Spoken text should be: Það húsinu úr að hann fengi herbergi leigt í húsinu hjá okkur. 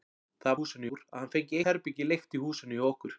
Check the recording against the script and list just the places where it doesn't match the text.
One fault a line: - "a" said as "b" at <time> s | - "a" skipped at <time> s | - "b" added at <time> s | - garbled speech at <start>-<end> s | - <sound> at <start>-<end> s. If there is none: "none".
none